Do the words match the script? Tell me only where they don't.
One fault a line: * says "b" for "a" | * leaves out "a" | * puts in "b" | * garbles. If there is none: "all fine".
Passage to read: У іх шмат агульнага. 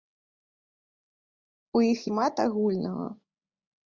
all fine